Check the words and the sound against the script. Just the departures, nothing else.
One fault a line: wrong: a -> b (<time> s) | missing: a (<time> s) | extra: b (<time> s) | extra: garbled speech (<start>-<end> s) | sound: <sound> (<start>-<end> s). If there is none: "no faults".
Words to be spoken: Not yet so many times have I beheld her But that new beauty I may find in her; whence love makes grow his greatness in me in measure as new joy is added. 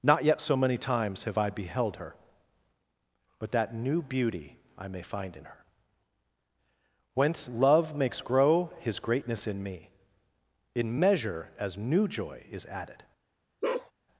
sound: bark (13.6-13.9 s)